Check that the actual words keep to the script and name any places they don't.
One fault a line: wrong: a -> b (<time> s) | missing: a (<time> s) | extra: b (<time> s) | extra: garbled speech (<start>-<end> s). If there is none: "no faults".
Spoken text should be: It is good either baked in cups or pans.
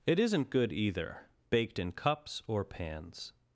wrong: is -> isn't (0.2 s)